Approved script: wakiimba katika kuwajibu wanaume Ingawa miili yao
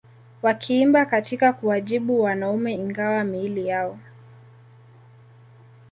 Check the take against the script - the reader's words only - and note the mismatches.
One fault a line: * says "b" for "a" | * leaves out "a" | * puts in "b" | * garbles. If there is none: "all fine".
all fine